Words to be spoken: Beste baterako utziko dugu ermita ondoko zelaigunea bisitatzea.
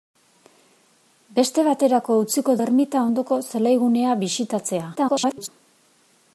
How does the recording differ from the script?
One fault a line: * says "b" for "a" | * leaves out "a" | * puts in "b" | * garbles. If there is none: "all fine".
* leaves out "dugu"
* garbles